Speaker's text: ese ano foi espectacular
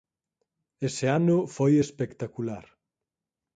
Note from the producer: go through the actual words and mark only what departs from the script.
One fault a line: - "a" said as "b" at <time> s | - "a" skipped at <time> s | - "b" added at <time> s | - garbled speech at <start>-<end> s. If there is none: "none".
none